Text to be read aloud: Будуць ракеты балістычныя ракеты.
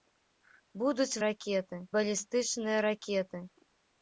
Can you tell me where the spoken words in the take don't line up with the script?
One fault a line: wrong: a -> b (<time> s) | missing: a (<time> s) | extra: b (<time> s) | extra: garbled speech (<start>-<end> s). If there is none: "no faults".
no faults